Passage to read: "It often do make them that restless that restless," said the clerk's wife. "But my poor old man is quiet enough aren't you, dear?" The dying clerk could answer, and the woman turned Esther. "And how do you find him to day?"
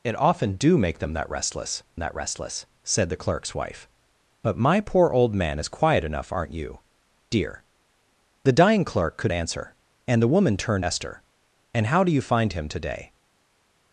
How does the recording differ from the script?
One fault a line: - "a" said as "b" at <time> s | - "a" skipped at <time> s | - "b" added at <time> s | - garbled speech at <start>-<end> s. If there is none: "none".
none